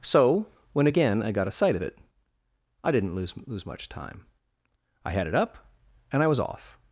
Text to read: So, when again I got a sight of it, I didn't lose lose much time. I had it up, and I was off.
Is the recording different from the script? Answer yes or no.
no